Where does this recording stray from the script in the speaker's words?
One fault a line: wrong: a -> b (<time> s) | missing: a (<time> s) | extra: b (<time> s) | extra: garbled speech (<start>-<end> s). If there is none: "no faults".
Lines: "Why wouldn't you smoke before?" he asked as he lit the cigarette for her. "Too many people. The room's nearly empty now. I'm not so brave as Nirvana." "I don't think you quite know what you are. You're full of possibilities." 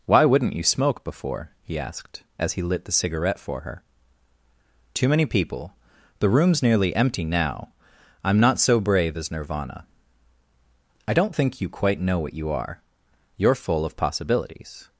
no faults